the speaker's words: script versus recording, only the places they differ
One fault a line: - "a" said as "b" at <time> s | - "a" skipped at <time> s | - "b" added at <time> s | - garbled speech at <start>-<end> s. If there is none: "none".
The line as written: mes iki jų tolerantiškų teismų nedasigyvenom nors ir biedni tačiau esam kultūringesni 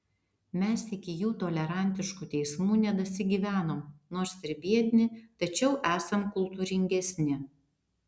none